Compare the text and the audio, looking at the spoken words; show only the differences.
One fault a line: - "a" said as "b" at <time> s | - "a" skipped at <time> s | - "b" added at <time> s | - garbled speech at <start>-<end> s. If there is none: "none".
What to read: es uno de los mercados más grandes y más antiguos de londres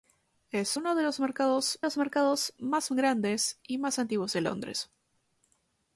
- "los mercados" added at 1.8 s